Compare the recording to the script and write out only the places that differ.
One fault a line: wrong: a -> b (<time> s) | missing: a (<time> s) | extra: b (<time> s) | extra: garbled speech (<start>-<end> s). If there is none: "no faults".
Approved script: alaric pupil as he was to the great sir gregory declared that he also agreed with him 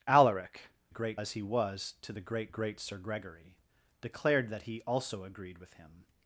wrong: pupil -> great (0.9 s)
extra: great (2.5 s)